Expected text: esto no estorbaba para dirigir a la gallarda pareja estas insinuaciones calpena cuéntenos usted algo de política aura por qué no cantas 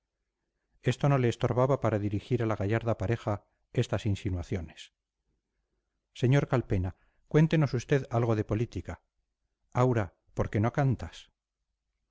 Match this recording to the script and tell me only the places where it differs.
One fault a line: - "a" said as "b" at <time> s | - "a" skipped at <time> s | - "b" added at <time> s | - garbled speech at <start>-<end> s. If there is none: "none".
- "le" added at 1.2 s
- "sr" added at 6.2 s